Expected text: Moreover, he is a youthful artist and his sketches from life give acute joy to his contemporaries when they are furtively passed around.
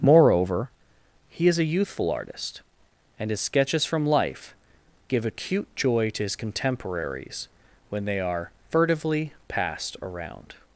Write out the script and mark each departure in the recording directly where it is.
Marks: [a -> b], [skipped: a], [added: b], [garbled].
Moreover, he is a youthful artist and his sketches from life give acute joy to his contemporaries when they are furtively passed around.